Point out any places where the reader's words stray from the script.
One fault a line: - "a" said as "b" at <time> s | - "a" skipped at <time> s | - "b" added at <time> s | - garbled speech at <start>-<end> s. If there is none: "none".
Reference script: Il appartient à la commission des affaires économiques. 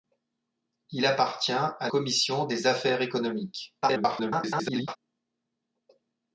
- "la" skipped at 1.9 s
- garbled speech at 3.8-5.0 s